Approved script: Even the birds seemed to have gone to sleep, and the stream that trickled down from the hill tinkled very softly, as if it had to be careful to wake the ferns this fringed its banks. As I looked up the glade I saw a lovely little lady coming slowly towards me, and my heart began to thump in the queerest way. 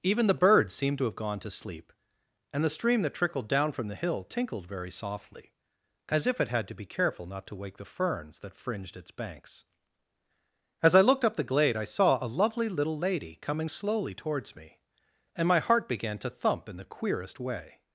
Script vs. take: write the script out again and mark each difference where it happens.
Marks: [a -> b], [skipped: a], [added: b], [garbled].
Even the birds seemed to have gone to sleep, and the stream that trickled down from the hill tinkled very softly, as if it had to be careful [added: not] to wake the ferns [this -> that] fringed its banks. As I looked up the glade I saw a lovely little lady coming slowly towards me, and my heart began to thump in the queerest way.